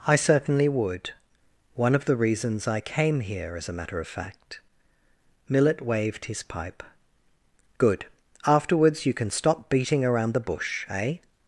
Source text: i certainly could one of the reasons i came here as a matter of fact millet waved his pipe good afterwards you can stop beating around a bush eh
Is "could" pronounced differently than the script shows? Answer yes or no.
yes